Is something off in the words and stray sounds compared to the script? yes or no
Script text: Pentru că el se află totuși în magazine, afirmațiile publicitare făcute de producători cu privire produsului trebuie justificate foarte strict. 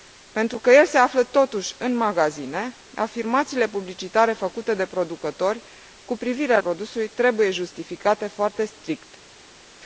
no